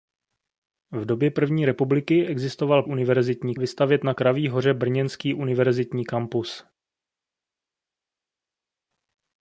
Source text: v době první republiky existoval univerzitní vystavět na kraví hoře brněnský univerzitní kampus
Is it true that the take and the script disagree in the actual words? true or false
false